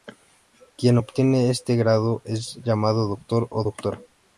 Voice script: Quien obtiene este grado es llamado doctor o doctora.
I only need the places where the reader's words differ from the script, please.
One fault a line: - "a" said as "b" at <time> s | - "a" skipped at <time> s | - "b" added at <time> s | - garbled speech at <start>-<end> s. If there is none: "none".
none